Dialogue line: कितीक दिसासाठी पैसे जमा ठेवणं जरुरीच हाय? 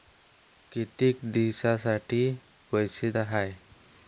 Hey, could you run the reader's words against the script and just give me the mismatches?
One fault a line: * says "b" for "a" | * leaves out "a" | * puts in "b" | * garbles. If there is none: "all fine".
* leaves out "जमा ठेवणं जरुरीच"